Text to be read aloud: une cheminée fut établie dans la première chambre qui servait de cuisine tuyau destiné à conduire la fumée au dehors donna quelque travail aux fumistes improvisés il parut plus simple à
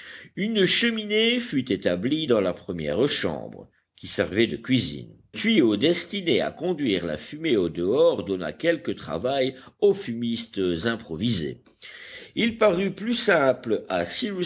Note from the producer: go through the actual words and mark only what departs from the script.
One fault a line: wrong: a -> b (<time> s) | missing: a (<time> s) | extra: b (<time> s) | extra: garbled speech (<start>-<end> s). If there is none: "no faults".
no faults